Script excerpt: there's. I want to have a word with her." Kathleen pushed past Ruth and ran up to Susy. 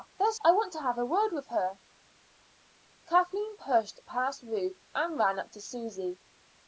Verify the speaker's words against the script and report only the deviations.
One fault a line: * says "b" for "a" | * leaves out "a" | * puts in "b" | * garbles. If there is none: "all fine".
all fine